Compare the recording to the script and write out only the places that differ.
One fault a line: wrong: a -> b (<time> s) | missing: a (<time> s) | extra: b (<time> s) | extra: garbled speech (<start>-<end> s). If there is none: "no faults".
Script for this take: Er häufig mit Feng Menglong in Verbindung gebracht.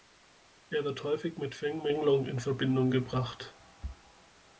extra: wird (0.8 s)